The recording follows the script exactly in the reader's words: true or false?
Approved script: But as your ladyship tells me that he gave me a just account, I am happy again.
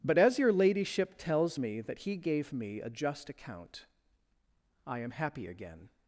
true